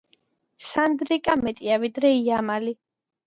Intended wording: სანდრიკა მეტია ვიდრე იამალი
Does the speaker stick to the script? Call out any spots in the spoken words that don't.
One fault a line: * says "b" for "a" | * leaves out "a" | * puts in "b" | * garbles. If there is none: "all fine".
all fine